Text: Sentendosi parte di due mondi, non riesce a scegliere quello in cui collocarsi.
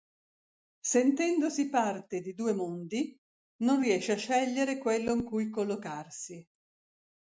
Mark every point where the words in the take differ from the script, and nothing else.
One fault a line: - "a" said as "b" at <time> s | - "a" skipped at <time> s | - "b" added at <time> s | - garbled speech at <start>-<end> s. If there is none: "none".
none